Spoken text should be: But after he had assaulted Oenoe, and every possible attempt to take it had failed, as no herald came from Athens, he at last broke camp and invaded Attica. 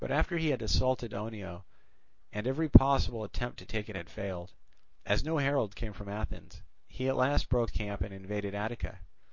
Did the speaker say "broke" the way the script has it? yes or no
yes